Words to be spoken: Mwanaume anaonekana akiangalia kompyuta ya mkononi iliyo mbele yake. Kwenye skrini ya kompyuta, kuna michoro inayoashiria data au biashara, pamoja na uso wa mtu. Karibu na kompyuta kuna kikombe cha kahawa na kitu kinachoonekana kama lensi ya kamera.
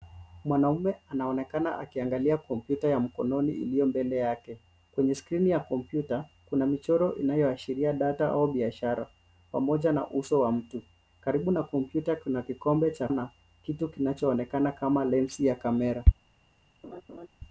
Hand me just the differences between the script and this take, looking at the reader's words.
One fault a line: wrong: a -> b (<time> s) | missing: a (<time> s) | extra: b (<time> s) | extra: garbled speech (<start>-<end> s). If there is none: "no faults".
missing: kahawa (13.1 s)